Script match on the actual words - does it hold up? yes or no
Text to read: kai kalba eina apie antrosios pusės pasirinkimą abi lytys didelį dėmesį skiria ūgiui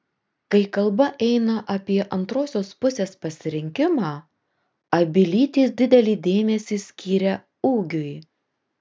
yes